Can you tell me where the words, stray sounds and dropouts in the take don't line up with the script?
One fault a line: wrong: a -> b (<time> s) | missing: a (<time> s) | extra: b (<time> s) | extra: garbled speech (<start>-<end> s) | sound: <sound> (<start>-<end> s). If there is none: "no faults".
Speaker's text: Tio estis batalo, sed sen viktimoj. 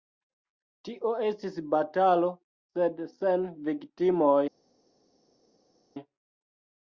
no faults